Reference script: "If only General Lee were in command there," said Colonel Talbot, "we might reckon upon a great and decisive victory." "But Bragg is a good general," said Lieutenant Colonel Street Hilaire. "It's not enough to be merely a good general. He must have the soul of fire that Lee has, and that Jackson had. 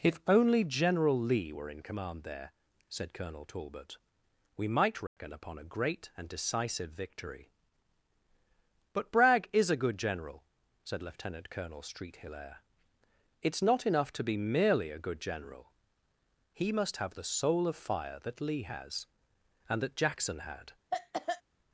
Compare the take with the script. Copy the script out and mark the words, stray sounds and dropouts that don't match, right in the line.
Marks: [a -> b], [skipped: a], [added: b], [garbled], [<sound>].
"If only General Lee were in command there," said Colonel Talbot, "we might reckon [dropout] upon a great and decisive victory." "But Bragg is a good general," said Lieutenant Colonel Street Hilaire. "It's not enough to be merely a good general. He must have the soul of fire that Lee has, and that Jackson had. [cough]